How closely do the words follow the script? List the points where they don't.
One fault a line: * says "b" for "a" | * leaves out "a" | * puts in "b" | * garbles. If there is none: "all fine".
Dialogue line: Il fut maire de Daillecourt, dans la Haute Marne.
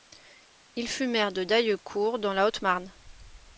all fine